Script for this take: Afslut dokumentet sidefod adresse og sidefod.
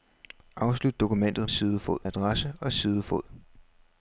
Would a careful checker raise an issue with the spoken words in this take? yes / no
no